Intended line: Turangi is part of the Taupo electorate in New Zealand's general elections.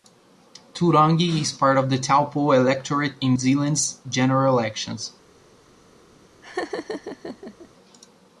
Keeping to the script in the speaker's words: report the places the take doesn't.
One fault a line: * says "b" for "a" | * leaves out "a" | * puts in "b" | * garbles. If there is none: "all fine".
* leaves out "New"